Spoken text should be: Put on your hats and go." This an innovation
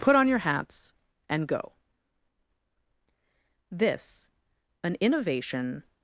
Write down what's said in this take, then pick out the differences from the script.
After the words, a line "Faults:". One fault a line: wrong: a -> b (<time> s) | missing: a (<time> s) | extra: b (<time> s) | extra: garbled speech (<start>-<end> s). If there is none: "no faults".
Put on your hats and go." This an innovation
Faults:
no faults